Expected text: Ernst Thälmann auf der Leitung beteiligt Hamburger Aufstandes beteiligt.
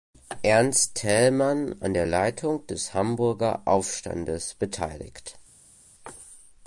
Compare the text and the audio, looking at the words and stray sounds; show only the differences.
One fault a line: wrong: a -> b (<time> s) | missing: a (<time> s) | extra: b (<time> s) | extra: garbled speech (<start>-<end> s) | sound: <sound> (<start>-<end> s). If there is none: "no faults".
wrong: auf -> an (1.8 s)
wrong: beteiligt -> des (2.7 s)